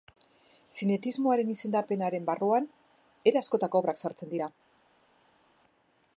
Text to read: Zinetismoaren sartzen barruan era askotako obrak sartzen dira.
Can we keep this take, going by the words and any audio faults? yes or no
no